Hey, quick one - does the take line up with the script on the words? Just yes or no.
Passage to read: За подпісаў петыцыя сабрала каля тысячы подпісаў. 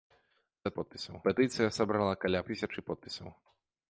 yes